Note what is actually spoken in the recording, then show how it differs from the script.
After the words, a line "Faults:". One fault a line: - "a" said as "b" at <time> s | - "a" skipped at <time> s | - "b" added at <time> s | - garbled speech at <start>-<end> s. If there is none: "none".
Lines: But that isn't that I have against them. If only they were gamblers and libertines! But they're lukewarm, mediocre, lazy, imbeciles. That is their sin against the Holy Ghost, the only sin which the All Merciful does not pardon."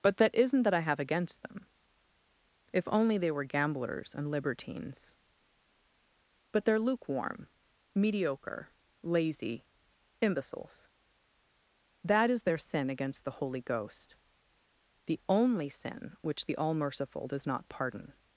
But that isn't that I have against them. If only they were gamblers and libertines! But they're lukewarm, mediocre, lazy, imbeciles. That is their sin against the Holy Ghost, the only sin which the All Merciful does not pardon."
Faults:
none